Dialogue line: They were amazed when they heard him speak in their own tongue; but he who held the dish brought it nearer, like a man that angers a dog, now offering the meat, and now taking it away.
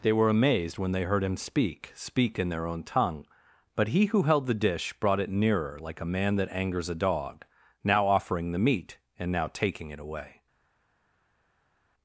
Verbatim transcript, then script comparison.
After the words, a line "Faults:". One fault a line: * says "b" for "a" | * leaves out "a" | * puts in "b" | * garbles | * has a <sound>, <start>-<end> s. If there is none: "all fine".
They were amazed when they heard him speak speak in their own tongue; but he who held the dish brought it nearer, like a man that angers a dog, now offering the meat, and now taking it away.
Faults:
* puts in "speak"